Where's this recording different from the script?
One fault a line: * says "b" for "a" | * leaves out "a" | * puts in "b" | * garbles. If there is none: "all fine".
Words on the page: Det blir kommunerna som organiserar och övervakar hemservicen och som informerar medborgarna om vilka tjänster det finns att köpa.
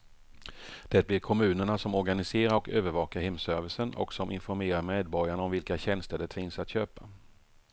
all fine